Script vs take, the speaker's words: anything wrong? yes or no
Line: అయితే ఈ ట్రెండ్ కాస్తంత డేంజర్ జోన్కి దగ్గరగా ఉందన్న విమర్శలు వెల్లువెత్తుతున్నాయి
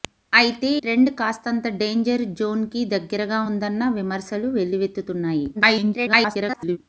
yes